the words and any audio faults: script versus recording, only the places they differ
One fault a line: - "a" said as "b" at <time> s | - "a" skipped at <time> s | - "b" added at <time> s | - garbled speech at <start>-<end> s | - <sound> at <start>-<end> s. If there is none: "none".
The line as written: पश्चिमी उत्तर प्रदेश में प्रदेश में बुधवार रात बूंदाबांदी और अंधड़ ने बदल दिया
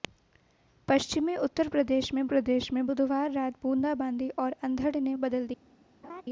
- laugh at 6.0-6.2 s